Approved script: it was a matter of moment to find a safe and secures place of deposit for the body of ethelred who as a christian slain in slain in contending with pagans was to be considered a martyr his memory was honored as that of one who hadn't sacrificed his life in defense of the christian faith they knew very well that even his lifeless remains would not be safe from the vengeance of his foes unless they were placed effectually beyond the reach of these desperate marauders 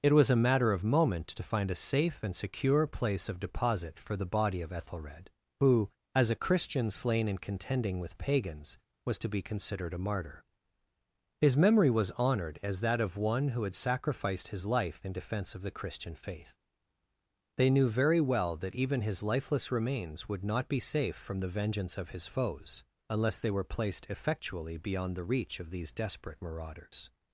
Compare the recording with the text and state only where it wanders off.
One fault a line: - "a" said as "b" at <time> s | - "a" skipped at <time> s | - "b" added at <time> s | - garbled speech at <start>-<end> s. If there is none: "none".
- "secures" said as "secure" at 2.4 s
- "slain in" skipped at 7.4 s
- "hadn't" said as "had" at 13.6 s